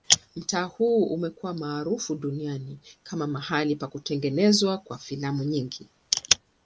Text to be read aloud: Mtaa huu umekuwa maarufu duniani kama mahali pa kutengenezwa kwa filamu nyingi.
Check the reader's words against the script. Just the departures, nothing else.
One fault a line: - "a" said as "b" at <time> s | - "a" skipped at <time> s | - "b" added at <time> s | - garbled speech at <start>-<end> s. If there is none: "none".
none